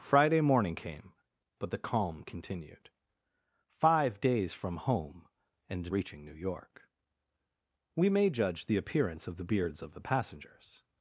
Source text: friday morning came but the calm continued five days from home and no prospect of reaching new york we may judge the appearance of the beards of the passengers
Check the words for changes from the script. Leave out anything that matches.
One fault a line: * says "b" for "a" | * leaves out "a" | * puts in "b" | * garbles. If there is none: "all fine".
* leaves out "no prospect of"